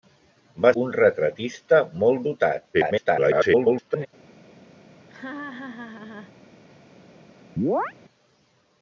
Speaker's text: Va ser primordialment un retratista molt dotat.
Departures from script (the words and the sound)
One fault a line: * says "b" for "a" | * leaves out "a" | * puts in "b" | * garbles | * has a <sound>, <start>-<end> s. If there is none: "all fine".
* leaves out "ser primordialment"
* garbles
* has a laugh, 5.1-6.3 s
* has a chirp, 7.6-7.9 s